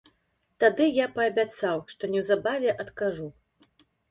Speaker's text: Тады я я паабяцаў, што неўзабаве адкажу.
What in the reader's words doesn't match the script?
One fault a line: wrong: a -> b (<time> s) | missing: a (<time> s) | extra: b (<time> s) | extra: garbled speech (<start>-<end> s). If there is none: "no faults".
missing: я (1.1 s)